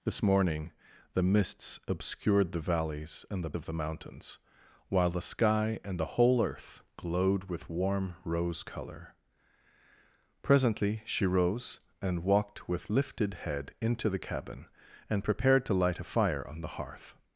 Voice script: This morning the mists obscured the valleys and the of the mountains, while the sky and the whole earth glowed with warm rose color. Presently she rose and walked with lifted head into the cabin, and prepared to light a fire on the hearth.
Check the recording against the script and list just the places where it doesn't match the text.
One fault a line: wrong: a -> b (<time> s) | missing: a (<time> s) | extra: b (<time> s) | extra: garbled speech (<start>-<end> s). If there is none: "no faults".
no faults